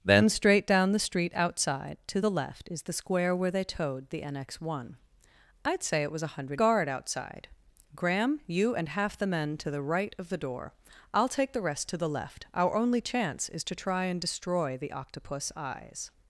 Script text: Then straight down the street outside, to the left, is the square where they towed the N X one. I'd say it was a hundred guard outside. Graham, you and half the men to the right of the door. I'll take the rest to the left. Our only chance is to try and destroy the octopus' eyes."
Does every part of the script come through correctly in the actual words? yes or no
yes